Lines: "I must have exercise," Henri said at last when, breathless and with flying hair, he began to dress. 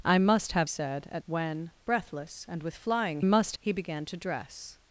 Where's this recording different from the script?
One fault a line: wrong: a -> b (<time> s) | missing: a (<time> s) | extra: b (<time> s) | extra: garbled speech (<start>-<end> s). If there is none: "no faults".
missing: exercise Henri (0.7 s)
missing: last (1.2 s)
wrong: hair -> must (3.2 s)